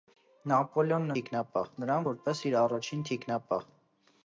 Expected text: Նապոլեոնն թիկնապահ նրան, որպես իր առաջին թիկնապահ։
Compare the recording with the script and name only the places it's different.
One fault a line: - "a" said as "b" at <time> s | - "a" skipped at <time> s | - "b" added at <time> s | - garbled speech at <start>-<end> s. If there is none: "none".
none